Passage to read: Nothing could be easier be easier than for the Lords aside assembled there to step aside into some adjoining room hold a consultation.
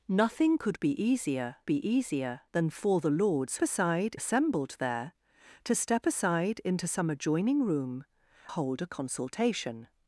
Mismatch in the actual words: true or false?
false